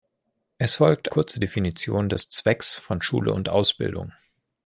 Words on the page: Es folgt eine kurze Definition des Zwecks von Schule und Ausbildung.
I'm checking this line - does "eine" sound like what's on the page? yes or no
no